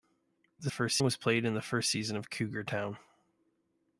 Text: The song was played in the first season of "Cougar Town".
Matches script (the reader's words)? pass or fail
fail